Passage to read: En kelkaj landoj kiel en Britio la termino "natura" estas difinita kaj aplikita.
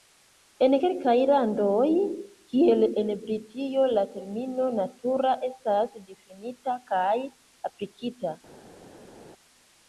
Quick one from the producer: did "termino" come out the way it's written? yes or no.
yes